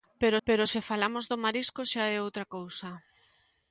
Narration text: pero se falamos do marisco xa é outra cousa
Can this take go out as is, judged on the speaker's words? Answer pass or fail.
fail